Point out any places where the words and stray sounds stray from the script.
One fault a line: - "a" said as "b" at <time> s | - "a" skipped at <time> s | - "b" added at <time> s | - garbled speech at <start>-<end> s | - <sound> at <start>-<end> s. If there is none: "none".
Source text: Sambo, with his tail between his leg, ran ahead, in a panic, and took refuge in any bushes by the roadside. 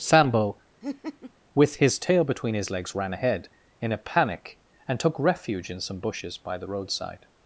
- laugh at 0.8-1.3 s
- "leg" said as "legs" at 2.7 s
- "any" said as "some" at 5.8 s